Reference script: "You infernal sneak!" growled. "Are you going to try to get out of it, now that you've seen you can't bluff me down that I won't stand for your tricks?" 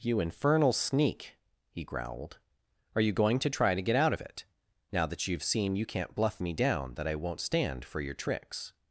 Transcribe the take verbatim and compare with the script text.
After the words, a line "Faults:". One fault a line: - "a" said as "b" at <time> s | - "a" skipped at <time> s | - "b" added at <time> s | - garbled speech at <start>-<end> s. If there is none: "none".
"You infernal sneak!" he growled. "Are you going to try to get out of it, now that you've seen you can't bluff me down that I won't stand for your tricks?"
Faults:
- "he" added at 1.7 s